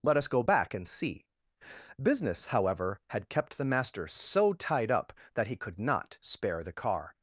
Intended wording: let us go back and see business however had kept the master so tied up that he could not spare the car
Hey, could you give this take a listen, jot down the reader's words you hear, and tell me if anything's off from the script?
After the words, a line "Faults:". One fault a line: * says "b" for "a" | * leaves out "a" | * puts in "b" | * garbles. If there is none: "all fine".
let us go back and see business however had kept the master so tied up that he could not spare the car
Faults:
all fine